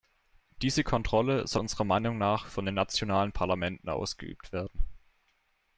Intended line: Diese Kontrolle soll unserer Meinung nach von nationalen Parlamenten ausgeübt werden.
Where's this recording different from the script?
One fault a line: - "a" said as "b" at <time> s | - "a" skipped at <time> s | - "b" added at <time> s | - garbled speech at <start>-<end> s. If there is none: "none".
- "den" added at 2.6 s